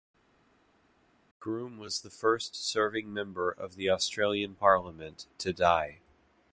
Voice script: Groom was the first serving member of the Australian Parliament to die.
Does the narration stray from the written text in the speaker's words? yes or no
no